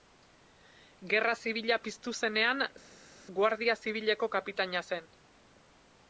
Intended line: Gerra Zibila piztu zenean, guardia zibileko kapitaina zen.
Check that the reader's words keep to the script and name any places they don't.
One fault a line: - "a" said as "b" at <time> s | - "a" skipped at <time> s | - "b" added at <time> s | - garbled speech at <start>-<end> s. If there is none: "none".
none